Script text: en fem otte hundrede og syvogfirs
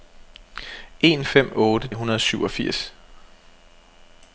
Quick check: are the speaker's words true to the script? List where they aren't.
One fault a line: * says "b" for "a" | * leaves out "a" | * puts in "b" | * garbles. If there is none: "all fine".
all fine